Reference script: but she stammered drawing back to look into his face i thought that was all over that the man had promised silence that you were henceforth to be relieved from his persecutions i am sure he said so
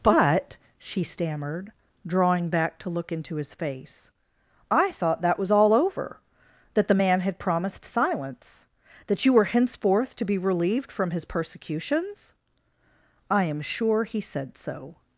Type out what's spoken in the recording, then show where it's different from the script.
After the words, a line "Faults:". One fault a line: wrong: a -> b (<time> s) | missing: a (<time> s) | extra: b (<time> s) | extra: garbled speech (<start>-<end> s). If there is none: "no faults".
but she stammered drawing back to look into his face i thought that was all over that the man had promised silence that you were henceforth to be relieved from his persecutions i am sure he said so
Faults:
no faults